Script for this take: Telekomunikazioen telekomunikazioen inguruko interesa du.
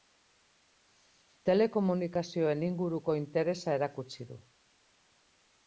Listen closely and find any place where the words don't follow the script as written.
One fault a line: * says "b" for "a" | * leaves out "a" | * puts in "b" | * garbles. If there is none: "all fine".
* leaves out "telekomunikazioen"
* puts in "erakutsi"